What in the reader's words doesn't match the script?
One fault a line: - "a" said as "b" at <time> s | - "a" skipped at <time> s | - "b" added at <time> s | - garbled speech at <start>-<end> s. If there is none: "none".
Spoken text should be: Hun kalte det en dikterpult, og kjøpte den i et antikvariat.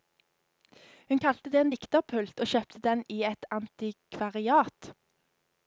none